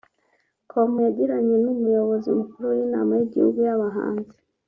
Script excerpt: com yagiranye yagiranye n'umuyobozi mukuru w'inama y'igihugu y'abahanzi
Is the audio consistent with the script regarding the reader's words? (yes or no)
no